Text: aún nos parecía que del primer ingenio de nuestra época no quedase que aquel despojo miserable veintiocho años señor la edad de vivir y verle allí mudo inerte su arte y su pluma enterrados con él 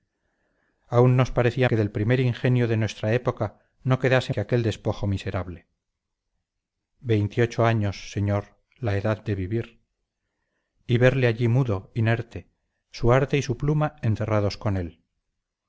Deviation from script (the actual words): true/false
false